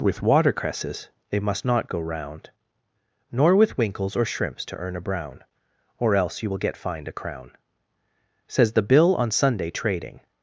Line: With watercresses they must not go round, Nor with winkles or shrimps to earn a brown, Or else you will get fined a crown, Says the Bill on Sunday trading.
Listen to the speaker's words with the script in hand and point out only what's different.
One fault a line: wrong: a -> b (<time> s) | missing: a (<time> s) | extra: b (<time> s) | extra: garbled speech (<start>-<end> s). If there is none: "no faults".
no faults